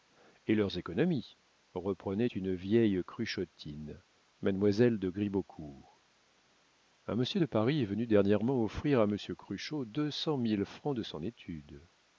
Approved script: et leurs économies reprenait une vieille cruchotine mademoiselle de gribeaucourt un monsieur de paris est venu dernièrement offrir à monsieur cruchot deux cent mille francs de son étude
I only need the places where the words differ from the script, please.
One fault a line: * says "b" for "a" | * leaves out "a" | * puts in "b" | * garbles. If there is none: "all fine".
all fine